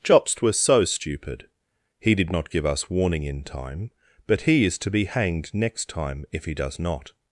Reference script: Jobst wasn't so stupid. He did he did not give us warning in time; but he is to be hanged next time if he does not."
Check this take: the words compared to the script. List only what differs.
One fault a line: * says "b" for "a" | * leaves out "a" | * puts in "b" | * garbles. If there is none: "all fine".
* says "was" for "wasn't"
* leaves out "he did"